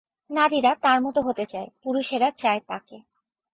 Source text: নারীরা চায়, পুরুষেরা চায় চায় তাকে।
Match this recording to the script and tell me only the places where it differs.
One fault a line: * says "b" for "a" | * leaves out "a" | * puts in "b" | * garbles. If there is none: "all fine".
* puts in "তার মতো হতে"
* leaves out "চায়"